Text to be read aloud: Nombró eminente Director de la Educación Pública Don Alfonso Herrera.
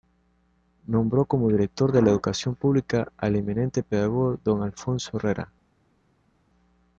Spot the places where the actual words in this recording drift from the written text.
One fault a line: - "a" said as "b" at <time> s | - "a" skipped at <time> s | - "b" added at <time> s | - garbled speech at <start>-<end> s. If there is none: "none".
- "eminente" said as "como" at 1.2 s
- "al eminente pedagogo" added at 3.2 s